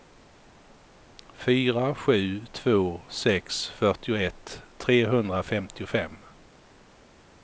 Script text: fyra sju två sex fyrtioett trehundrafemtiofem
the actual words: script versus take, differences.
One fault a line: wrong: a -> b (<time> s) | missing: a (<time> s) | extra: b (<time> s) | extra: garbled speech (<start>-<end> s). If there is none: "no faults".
no faults